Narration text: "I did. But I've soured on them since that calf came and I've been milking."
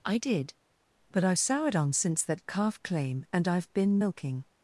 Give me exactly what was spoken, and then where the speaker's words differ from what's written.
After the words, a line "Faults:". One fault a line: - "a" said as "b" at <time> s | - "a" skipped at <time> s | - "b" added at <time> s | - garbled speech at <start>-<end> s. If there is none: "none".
"I did. But I've soured on since that calf claim and I've been milking."
Faults:
- "them" skipped at 1.9 s
- "came" said as "claim" at 2.8 s